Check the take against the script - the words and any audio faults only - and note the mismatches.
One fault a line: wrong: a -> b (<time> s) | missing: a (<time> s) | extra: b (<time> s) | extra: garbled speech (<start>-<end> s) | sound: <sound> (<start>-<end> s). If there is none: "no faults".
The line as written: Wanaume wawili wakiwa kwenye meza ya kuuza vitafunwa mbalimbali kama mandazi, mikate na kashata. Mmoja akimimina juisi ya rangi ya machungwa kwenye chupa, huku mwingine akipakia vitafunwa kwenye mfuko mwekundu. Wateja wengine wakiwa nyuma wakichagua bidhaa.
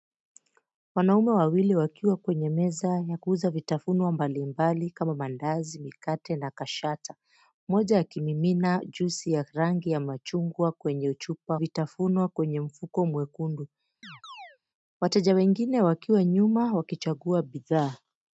missing: huku mwingine akipakia (11.6 s)
sound: chirp (14.0-14.6 s)